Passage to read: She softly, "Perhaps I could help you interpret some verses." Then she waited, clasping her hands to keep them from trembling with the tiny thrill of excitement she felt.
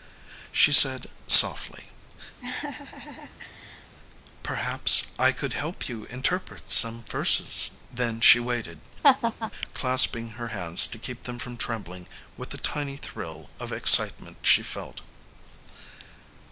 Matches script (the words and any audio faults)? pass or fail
fail